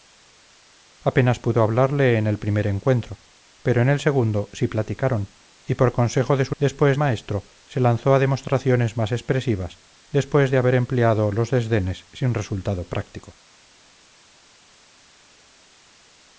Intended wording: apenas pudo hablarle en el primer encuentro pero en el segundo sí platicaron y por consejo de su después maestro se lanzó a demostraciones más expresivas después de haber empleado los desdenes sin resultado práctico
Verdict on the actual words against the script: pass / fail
pass